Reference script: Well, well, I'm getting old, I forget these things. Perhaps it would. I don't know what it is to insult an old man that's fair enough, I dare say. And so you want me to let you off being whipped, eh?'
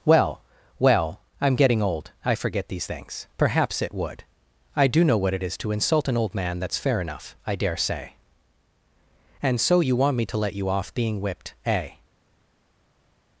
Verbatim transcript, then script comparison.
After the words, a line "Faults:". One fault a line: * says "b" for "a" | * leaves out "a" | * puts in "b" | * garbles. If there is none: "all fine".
Well, well, I'm getting old, I forget these things. Perhaps it would. I do know what it is to insult an old man that's fair enough, I dare say. And so you want me to let you off being whipped, eh?'
Faults:
* says "do" for "don't"